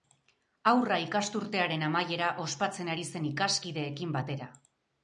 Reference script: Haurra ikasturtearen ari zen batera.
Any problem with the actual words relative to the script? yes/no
yes